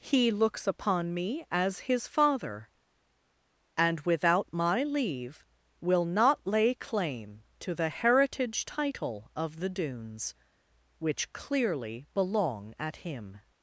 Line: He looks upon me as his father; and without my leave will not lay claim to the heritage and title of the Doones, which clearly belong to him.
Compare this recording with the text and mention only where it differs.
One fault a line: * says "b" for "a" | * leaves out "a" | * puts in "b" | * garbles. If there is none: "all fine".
* leaves out "and"
* says "at" for "to"